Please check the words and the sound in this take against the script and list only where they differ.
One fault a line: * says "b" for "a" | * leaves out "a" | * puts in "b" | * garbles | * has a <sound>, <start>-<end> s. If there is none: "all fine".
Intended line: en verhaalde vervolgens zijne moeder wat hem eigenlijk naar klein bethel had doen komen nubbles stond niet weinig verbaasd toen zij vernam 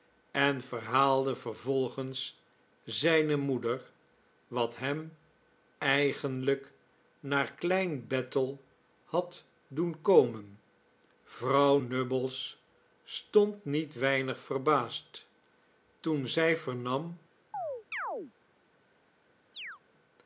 * puts in "vrouw"
* has a chirp, 17.5-18.3 s
* has a chirp, 19.5-19.8 s